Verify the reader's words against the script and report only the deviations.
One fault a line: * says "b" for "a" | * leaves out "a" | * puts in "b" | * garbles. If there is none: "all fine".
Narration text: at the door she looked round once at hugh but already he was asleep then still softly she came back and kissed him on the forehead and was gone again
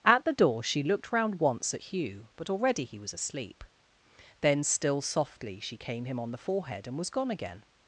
* leaves out "back and kissed"